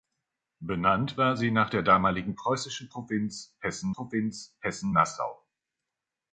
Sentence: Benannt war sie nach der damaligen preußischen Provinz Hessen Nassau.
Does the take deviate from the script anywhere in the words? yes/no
yes